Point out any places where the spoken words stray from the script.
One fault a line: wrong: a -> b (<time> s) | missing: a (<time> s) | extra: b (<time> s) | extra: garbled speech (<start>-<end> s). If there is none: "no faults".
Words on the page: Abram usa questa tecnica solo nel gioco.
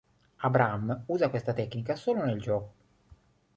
no faults